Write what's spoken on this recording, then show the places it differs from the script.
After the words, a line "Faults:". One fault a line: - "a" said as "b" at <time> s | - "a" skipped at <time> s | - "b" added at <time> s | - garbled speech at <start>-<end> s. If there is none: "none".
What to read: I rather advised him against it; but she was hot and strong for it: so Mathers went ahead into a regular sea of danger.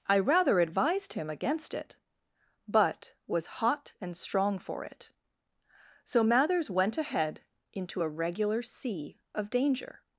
I rather advised him against it; but was hot and strong for it: so Mathers went ahead into a regular sea of danger.
Faults:
- "she" skipped at 3.1 s